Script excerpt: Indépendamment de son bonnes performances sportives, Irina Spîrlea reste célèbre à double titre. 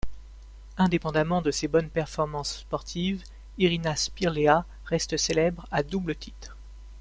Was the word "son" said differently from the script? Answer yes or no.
yes